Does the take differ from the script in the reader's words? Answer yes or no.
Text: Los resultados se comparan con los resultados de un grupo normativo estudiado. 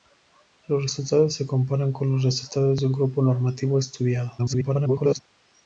yes